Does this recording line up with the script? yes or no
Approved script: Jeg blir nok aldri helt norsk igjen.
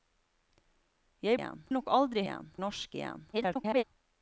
no